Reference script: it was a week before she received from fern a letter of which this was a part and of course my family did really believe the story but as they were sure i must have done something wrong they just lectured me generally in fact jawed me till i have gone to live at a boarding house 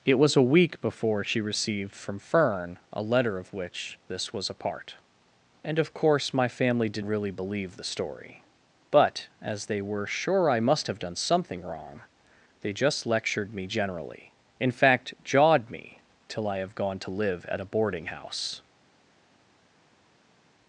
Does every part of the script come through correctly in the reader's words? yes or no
yes